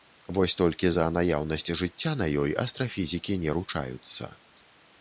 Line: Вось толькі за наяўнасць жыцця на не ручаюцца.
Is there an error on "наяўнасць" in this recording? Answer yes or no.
no